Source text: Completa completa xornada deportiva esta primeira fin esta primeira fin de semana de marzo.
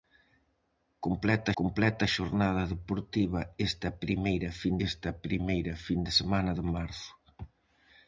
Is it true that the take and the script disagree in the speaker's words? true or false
false